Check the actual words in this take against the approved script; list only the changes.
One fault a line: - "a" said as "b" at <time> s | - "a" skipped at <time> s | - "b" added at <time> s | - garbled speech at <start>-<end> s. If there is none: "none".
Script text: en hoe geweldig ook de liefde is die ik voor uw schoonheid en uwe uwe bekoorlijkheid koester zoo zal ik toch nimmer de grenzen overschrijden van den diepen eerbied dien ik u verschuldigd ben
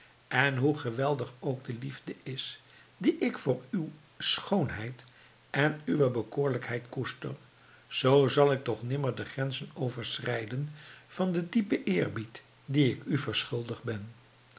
- "uwe" skipped at 6.1 s